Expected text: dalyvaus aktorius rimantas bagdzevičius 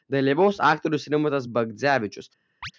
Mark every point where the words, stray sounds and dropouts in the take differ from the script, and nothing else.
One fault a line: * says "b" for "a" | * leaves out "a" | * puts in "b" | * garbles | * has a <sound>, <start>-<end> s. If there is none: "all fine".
* has a chirp, 2.6-2.7 s